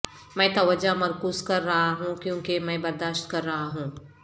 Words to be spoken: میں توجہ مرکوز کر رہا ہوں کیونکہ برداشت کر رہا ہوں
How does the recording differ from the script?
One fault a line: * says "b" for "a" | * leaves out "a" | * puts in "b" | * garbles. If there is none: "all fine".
* puts in "میں"